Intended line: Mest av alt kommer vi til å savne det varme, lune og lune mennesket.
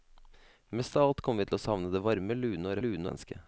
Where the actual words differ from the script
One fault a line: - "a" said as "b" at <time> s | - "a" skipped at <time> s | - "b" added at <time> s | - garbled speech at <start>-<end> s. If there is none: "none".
none